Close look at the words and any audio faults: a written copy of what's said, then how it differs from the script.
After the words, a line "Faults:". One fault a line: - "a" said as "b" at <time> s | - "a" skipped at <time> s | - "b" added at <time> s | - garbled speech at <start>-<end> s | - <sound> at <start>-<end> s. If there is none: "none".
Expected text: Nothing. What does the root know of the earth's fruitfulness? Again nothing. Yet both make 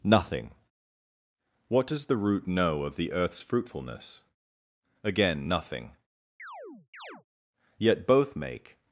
Nothing. What does the root know of the earth's fruitfulness? Again nothing. Yet both make
Faults:
- chirp at 6.4-7.2 s